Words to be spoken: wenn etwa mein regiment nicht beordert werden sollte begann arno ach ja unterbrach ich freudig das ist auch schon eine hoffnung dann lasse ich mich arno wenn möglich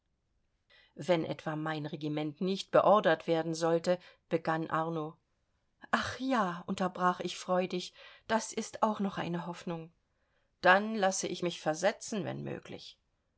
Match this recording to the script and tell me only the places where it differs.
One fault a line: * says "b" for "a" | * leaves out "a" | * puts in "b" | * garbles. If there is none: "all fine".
* says "noch" for "schon"
* says "versetzen" for "arno"